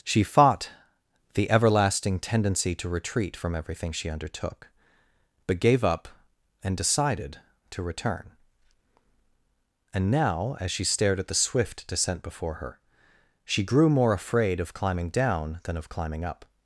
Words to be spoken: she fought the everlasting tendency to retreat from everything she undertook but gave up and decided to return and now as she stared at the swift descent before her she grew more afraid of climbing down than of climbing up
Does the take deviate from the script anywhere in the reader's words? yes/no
no